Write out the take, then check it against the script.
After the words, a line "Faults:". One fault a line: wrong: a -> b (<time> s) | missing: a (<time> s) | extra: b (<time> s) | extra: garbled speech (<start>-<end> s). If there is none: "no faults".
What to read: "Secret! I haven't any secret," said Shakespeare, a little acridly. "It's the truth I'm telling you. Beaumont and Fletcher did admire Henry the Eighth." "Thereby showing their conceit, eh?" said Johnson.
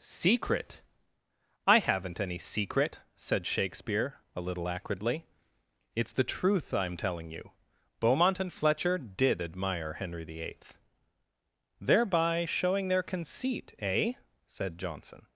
"Secret! I haven't any secret," said Shakespeare, a little acridly. "It's the truth I'm telling you. Beaumont and Fletcher did admire Henry the Eighth." "Thereby showing their conceit, eh?" said Johnson.
Faults:
no faults